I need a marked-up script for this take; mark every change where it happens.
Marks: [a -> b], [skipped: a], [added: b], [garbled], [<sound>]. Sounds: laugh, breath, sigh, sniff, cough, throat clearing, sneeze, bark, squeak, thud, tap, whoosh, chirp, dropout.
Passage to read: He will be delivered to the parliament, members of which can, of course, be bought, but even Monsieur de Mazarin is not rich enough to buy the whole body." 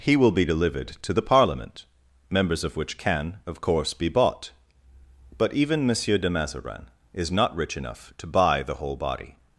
He will be delivered to the parliament, members of which can, of course, be bought, but even Monsieur de Mazarin is not rich enough to buy the whole body."